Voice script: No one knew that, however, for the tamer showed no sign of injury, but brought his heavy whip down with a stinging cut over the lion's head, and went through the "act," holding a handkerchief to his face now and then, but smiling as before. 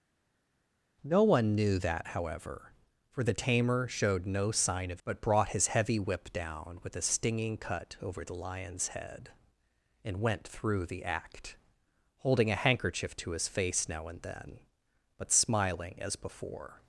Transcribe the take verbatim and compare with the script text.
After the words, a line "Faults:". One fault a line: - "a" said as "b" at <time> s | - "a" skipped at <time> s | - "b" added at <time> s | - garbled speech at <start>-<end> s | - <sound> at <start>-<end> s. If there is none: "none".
No one knew that, however, for the tamer showed no sign of but brought his heavy whip down with a stinging cut over the lion's head, and went through the "act," holding a handkerchief to his face now and then, but smiling as before.
Faults:
- "injury" skipped at 5.0 s